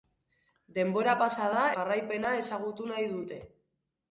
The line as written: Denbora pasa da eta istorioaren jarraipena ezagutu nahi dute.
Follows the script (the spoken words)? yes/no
no